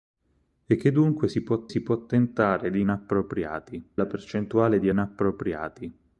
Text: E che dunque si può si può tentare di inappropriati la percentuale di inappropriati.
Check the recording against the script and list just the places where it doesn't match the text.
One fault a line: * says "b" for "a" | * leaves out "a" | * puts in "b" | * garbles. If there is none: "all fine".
all fine